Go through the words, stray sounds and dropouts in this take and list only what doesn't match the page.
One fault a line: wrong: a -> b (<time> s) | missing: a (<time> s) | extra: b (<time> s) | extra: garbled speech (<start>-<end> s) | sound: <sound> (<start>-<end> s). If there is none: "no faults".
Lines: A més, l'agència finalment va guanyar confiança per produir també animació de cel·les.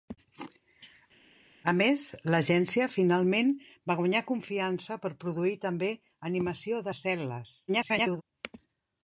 extra: garbled speech (7.7-8.2 s)